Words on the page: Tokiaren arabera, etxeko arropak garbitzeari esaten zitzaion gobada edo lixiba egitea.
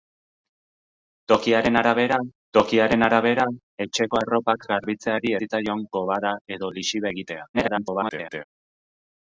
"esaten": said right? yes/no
no